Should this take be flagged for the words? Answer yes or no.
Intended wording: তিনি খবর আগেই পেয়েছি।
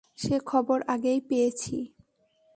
yes